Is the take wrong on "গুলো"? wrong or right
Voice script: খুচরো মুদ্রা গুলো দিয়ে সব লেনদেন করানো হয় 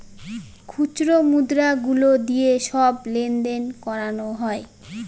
right